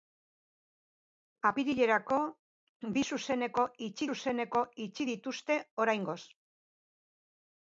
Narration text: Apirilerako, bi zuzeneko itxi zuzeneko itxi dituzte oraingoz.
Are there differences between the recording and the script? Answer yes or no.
no